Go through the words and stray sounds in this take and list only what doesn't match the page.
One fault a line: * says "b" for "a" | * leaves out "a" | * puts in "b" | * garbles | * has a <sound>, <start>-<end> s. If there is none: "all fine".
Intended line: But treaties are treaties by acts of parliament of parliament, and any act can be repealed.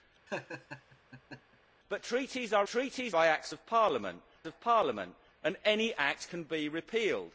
* has a laugh, 0.3-1.6 s